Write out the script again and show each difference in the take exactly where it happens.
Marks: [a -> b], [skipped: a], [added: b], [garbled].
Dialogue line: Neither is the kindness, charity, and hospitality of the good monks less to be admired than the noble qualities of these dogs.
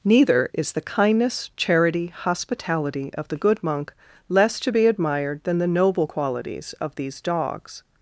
Neither is the kindness, charity, [skipped: and] hospitality of the good [monks -> monk] less to be admired than the noble qualities of these dogs.